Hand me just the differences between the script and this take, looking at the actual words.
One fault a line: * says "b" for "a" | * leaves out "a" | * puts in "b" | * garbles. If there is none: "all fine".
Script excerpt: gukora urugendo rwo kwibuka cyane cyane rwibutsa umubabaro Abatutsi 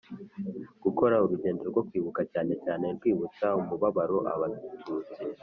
all fine